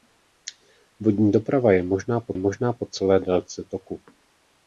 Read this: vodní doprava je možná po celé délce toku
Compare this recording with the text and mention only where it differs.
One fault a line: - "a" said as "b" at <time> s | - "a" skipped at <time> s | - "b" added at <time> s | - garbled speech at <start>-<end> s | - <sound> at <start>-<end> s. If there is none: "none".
- "možná po" added at 2.4 s